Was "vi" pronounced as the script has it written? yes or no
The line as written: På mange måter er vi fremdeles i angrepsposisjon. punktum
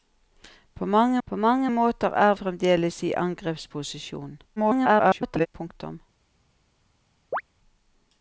no